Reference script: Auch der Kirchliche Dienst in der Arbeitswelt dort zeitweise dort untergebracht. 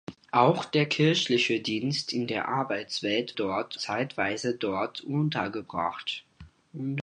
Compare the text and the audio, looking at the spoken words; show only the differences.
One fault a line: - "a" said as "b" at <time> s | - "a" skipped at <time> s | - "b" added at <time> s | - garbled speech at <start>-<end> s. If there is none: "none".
none